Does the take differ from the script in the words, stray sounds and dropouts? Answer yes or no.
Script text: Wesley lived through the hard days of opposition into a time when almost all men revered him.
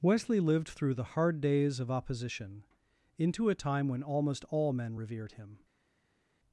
no